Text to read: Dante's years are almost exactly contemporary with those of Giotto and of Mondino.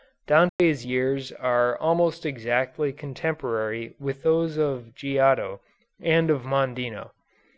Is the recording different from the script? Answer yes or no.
no